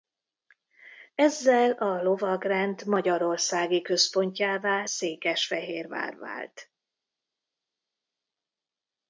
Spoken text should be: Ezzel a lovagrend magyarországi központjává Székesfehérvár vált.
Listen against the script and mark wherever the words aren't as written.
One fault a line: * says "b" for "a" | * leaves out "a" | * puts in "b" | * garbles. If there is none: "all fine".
all fine